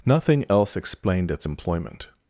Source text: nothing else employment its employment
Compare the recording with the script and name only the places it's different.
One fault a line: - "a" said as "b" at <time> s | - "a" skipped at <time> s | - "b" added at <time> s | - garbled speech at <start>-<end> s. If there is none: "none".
- "employment" said as "explained" at 0.8 s